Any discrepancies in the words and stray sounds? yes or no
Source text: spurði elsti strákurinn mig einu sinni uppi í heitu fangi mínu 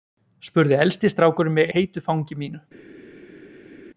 yes